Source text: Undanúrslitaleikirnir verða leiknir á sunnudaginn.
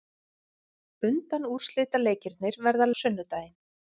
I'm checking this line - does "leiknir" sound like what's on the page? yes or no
no